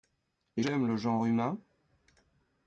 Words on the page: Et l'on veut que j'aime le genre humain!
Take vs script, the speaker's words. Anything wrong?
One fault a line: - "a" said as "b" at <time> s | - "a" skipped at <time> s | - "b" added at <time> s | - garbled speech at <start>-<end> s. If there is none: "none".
- "l'on veut que" skipped at 0.7 s